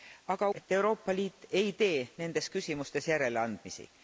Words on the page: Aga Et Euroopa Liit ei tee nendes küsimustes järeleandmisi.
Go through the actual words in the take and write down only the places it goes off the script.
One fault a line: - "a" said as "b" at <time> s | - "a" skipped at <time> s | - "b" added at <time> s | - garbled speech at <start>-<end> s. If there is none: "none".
none